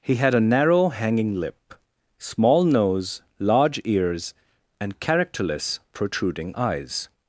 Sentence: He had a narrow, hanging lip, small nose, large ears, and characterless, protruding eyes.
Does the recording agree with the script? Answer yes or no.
yes